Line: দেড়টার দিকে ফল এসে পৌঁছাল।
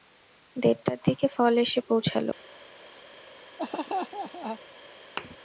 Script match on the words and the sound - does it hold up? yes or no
no